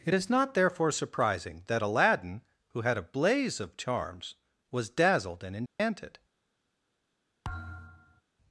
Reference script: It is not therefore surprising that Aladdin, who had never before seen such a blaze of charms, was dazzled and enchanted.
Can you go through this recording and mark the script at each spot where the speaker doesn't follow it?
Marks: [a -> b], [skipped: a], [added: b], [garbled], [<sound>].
It is not therefore surprising that Aladdin, who had [skipped: never before seen such] a blaze of charms, was dazzled and enchanted. [dropout] [thud]